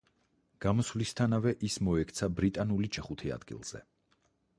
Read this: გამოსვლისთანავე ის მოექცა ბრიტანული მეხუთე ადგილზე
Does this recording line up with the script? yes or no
yes